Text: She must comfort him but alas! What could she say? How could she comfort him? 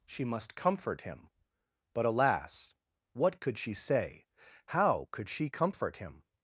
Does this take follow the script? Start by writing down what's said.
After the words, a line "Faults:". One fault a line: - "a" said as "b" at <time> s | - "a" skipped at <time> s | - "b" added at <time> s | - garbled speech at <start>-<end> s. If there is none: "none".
She must comfort him but alas! What could she say? How could she comfort him?
Faults:
none